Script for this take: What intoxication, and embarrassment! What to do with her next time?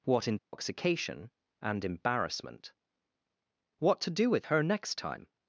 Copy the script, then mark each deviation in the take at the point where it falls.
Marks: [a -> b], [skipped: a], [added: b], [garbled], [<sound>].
What intoxication, [dropout] and embarrassment! What to do with her next time?